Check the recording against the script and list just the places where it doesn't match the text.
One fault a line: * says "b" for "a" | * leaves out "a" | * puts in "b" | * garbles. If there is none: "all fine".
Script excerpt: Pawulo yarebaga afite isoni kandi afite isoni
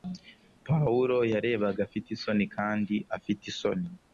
all fine